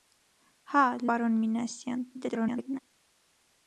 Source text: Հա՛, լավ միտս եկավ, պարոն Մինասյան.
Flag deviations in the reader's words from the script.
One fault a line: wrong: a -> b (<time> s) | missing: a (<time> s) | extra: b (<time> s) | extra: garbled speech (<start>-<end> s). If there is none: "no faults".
missing: լավ միտս եկավ (0.8 s)
extra: garbled speech (2.1-2.8 s)